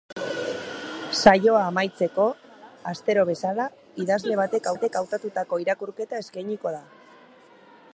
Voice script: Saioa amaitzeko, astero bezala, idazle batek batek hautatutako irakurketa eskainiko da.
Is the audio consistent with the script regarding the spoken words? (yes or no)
yes